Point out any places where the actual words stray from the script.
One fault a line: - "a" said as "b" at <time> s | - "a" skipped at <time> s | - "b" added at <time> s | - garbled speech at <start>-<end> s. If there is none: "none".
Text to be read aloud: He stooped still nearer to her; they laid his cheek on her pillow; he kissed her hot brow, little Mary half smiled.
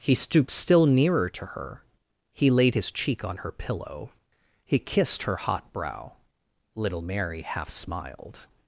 - "they" said as "he" at 2.3 s